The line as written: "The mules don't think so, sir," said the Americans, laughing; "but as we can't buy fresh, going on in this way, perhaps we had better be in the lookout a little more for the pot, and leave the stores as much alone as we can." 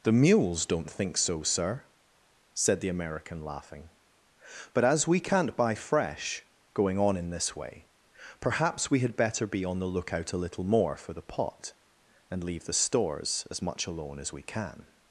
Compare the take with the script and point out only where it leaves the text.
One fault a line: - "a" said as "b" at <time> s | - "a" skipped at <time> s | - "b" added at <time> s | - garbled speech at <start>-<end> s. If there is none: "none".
- "Americans" said as "American" at 2.9 s
- "in" said as "on" at 9.6 s